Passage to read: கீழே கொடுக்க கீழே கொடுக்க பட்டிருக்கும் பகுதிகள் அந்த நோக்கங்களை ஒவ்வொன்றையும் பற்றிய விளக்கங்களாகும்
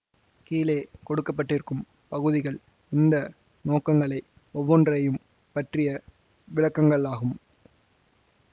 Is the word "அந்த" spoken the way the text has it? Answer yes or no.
no